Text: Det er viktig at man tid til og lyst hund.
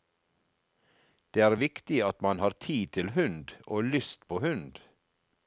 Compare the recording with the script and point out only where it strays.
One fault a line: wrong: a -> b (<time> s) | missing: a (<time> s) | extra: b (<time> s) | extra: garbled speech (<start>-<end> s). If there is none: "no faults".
extra: har (2.4 s)
extra: hund (3.2 s)
extra: på (4.3 s)